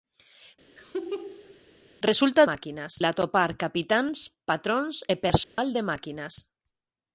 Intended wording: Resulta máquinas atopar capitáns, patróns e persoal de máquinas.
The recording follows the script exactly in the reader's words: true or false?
true